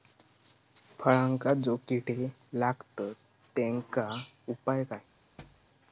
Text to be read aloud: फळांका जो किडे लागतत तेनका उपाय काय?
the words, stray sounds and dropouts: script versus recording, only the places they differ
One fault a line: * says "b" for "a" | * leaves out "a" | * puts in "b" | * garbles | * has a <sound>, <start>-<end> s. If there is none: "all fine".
* has a thud, 5.4-5.7 s